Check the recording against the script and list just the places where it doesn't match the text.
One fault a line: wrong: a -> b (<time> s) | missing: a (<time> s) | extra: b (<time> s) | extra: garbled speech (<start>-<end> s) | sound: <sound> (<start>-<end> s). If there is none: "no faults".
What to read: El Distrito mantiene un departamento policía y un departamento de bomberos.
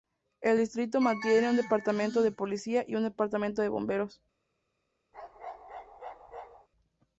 extra: de (2.2 s)
sound: bark (5.1-6.7 s)